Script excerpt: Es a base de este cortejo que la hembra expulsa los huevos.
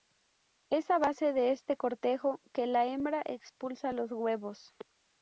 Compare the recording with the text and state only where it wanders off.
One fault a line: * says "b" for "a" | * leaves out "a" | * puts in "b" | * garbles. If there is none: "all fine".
all fine